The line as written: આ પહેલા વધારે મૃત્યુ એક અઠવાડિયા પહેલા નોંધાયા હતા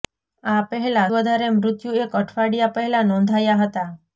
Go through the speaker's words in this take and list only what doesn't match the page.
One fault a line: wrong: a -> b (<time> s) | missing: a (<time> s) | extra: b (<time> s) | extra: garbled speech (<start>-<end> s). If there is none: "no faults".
no faults